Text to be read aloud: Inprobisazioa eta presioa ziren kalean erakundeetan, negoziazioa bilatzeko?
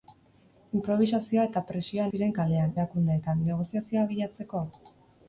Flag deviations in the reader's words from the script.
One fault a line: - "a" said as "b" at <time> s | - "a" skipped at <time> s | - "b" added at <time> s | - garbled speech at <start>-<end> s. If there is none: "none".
none